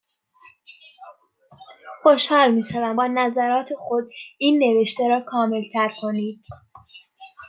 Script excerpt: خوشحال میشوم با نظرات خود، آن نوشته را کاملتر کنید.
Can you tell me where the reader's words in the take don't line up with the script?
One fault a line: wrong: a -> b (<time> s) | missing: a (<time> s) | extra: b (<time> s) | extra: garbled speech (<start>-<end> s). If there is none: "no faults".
wrong: آن -> این (4.4 s)